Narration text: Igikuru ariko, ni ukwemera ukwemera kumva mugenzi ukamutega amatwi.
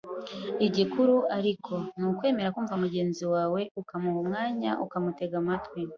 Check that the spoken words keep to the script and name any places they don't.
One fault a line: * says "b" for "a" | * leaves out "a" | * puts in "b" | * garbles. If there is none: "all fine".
* leaves out "ukwemera"
* puts in "wawe ukamuha umwanya"